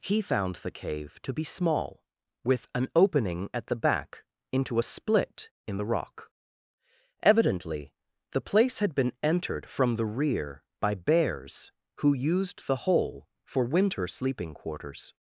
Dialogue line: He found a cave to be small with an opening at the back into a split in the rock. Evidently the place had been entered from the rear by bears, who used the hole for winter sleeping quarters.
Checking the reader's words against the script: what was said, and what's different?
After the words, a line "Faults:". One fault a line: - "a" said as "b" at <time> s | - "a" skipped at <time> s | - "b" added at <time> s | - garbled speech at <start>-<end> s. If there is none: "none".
He found the cave to be small with an opening at the back into a split in the rock. Evidently the place had been entered from the rear by bears, who used the hole for winter sleeping quarters.
Faults:
- "a" said as "the" at 0.6 s